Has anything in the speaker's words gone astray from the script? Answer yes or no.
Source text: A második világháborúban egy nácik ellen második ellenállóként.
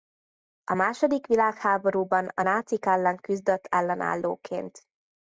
yes